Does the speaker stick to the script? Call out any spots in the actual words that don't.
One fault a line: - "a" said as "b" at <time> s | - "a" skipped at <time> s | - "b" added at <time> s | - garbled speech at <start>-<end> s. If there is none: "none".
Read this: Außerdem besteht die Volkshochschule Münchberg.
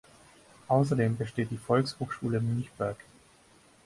none